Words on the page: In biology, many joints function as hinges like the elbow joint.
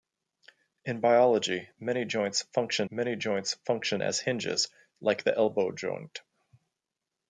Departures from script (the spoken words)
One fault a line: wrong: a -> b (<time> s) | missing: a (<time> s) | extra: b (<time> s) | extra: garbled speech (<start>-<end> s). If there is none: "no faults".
extra: many joints function (2.9 s)